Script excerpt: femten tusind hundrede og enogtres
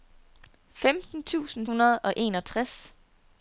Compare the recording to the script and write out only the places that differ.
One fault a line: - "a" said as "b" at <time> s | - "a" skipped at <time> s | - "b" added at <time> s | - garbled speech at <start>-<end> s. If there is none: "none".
none